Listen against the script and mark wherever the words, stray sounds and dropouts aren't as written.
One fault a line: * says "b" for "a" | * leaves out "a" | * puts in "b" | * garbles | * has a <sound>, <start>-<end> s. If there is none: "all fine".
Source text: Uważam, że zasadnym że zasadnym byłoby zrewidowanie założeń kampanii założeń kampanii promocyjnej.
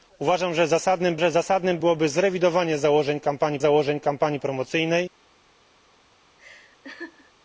* has a laugh, 6.4-7.3 s